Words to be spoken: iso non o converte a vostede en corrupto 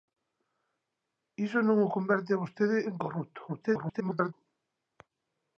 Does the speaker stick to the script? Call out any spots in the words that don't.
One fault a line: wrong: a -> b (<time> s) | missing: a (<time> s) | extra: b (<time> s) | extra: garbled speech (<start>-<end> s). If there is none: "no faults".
extra: garbled speech (3.5-4.3 s)